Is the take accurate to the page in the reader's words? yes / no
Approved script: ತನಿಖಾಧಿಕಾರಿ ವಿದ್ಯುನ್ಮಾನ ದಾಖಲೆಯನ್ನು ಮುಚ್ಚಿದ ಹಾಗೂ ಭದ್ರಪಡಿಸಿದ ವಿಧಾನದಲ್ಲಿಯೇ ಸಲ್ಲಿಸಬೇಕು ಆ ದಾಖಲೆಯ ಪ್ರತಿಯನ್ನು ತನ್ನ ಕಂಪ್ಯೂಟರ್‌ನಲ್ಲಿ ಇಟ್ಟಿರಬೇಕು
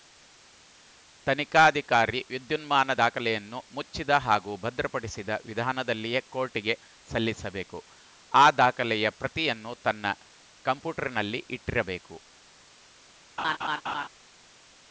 no